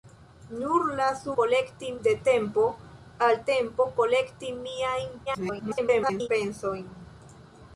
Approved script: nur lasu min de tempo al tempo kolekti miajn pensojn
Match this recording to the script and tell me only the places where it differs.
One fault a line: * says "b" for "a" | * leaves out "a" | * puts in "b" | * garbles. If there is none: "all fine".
* says "kolekti" for "min"
* garbles